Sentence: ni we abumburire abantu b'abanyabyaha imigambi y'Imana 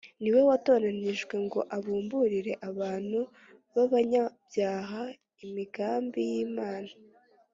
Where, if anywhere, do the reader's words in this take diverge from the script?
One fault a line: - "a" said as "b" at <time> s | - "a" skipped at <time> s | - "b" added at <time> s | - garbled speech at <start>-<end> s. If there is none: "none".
- "watoranijwe ngo" added at 0.5 s